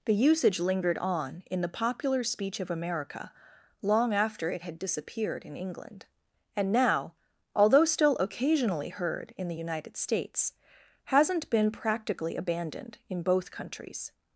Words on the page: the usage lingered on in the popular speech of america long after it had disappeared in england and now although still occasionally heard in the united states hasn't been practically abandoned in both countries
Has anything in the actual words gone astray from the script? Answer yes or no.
no